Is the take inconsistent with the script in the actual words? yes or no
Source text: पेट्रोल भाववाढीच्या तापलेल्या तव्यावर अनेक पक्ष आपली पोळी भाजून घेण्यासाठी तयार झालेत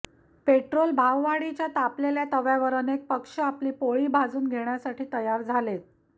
no